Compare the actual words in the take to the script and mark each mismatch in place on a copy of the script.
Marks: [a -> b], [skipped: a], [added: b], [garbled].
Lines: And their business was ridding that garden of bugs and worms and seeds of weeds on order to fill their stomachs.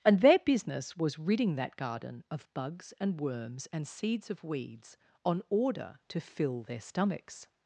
And their business was ridding that garden of bugs and worms and seeds of weeds on order to fill their stomachs.